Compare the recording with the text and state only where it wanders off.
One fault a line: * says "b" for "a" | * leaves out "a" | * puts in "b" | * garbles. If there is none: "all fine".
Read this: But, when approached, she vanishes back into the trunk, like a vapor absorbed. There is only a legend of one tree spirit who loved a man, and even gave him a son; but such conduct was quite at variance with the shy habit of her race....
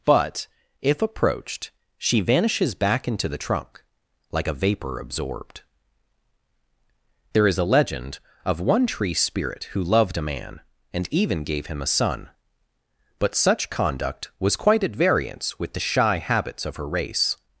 * says "if" for "when"
* leaves out "only"
* says "habits" for "habit"